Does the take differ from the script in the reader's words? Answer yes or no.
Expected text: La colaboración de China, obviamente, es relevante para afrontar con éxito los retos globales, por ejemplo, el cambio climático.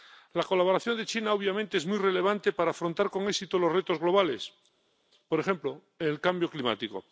yes